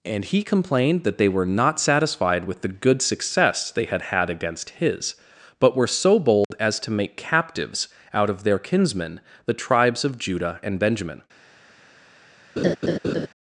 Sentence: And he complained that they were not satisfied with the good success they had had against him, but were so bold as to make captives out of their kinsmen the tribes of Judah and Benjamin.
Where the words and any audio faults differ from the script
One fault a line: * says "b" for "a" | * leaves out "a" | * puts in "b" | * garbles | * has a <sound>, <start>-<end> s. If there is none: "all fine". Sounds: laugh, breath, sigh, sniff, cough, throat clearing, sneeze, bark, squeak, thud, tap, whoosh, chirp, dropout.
* says "his" for "him"
* has a dropout, 6.4-6.5 s
* has a laugh, 12.6-13.3 s